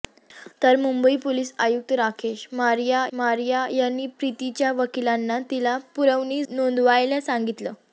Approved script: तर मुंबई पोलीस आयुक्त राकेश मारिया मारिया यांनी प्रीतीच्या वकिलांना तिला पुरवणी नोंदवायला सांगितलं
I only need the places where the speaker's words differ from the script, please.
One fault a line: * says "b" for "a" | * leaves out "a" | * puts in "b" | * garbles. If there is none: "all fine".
all fine